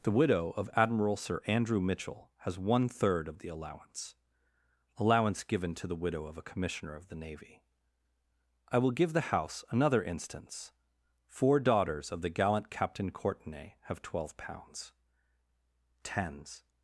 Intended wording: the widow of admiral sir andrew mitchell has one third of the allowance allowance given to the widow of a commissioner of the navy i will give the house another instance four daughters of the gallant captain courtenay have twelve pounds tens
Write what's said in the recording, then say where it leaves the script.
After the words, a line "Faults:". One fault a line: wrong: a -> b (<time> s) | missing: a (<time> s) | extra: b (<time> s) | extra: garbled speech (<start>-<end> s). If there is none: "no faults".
the widow of admiral sir andrew mitchell has one third of the allowance allowance given to the widow of a commissioner of the navy i will give the house another instance four daughters of the gallant captain courtenay have twelve pounds tens
Faults:
no faults